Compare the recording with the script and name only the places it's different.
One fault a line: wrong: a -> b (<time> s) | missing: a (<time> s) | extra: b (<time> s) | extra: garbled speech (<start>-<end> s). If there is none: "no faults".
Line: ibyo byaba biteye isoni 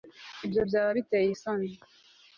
no faults